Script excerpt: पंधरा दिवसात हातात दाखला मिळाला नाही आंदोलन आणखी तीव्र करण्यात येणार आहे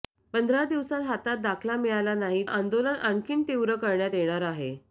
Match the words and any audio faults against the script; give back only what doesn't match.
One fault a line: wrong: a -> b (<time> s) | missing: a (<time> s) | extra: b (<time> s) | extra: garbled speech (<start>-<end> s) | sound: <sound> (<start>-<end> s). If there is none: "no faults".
no faults